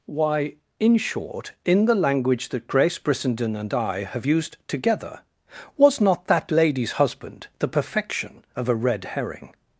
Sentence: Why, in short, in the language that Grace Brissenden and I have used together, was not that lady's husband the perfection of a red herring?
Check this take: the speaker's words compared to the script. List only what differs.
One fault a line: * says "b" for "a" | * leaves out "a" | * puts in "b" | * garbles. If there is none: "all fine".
all fine